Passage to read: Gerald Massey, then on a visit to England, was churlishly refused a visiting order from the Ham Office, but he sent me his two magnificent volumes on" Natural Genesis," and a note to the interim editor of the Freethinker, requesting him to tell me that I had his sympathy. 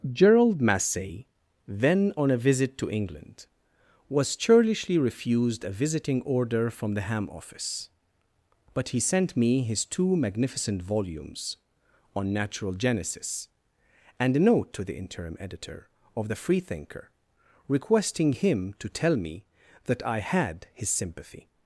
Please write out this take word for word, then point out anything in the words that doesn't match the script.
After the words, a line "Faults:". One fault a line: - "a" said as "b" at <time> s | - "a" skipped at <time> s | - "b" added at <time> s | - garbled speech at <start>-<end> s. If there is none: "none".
Gerald Massey, then on a visit to England, was churlishly refused a visiting order from the Ham Office, but he sent me his two magnificent volumes on" Natural Genesis," and a note to the interim editor of the Freethinker, requesting him to tell me that I had his sympathy.
Faults:
none